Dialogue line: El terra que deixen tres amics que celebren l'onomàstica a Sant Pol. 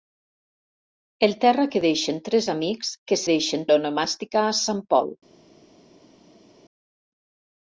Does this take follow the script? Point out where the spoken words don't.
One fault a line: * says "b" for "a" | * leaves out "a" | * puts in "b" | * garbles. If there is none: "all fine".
* says "deixen" for "celebren"